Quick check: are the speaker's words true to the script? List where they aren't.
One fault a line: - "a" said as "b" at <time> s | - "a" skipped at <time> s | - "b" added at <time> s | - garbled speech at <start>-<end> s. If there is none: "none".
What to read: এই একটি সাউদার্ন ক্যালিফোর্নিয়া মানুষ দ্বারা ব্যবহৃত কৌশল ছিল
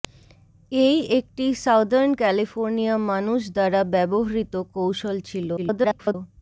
- garbled speech at 5.6-6.1 s